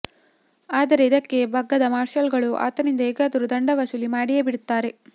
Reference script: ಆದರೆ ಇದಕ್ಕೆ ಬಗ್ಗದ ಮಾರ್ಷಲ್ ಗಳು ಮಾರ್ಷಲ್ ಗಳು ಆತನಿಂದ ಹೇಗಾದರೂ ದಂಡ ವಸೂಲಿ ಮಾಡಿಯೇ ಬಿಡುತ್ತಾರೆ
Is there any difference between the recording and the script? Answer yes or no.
yes